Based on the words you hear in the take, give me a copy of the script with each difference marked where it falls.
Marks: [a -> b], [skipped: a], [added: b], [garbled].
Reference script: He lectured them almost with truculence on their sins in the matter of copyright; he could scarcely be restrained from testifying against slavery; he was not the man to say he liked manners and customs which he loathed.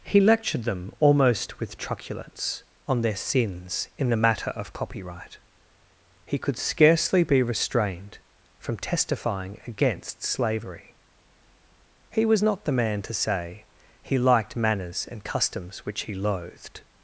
He lectured them almost with truculence on their sins in the matter of copyright; he could scarcely be restrained from testifying against slavery; he was not the man to say he liked manners and customs which he loathed.